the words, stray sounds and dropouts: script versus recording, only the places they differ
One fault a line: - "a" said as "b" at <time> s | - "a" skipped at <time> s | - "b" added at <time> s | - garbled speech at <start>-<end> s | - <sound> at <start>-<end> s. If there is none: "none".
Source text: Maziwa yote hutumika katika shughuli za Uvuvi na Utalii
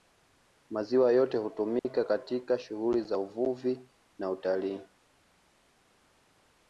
- dropout at 1.8-1.9 s